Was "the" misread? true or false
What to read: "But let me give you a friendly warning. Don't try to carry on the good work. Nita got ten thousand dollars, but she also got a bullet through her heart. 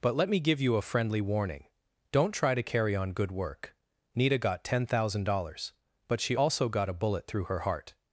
true